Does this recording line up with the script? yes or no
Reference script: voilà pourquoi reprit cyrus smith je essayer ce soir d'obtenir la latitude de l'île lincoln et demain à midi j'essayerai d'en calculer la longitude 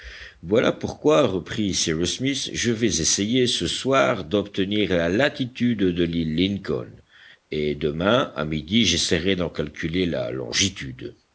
no